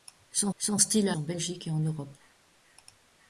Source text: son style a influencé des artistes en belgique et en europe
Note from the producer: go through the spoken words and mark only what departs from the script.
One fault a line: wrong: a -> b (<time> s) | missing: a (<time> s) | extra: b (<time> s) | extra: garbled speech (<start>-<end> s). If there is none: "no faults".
extra: son (0.6 s)
missing: influencé des artistes (1.2 s)